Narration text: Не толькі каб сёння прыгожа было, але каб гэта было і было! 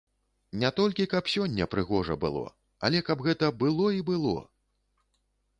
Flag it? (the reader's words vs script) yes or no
no